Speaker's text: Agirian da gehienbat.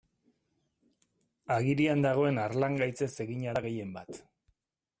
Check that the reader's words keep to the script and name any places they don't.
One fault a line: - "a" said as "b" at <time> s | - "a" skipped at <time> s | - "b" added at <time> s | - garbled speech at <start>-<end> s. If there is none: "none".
- "dagoen harlangaitzez egina" added at 2.1 s